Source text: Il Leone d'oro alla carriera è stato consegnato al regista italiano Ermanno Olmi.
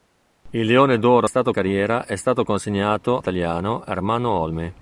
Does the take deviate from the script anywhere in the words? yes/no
yes